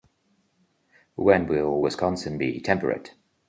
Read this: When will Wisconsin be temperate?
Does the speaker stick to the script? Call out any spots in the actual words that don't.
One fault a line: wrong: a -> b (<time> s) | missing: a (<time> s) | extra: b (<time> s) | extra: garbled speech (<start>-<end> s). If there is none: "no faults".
no faults